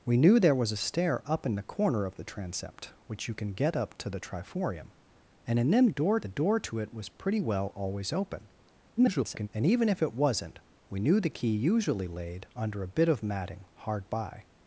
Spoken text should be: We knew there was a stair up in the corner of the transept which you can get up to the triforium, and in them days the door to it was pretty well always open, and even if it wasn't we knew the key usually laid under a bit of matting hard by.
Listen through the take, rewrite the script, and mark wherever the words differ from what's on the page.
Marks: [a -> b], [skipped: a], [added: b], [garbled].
We knew there was a stair up in the corner of the transept which you can get up to the triforium, and in them [days -> door] the door to it was pretty well always open, [garbled] and even if it wasn't we knew the key usually laid under a bit of matting hard by.